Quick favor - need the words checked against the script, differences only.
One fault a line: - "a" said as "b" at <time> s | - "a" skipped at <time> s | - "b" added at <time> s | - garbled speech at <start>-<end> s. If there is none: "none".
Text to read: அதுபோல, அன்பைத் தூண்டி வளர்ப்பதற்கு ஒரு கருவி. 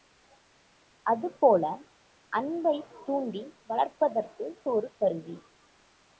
none